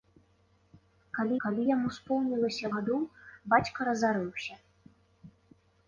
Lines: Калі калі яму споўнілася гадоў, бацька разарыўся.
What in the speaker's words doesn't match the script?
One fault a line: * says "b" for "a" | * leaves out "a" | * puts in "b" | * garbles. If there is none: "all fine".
all fine